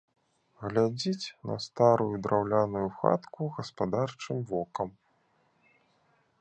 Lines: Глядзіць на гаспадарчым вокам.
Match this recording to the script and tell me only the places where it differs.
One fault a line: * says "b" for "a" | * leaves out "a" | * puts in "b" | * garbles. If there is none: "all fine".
* puts in "старую драўляную хатку"